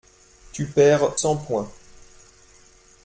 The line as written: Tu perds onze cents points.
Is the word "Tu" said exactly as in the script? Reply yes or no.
yes